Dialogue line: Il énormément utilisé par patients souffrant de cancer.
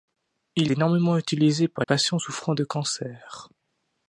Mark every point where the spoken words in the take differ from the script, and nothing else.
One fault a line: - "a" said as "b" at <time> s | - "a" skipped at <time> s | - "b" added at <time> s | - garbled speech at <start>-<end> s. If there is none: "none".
none